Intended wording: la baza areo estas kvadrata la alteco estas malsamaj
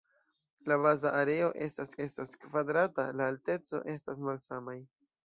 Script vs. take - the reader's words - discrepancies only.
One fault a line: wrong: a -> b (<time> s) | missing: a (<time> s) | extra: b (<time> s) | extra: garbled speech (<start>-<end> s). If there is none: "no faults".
extra: estas (2.1 s)